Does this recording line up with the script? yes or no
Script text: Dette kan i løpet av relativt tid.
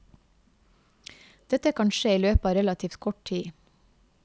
no